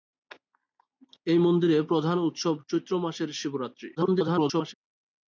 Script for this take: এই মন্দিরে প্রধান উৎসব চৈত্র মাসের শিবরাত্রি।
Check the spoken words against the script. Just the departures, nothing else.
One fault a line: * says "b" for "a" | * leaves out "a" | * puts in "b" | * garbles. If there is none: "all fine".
* garbles